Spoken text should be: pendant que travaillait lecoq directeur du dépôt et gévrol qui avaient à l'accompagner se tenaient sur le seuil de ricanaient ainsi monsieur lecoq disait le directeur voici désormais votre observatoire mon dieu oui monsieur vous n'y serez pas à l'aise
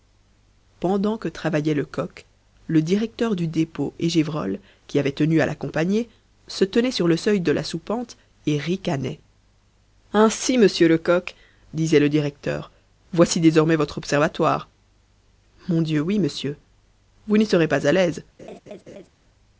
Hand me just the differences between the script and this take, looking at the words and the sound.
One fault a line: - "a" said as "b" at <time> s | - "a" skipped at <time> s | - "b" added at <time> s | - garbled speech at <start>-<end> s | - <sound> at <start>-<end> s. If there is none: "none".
- "le" added at 2.7 s
- "tenu" added at 5.1 s
- "la soupente et" added at 7.5 s
- laugh at 18.4-19.1 s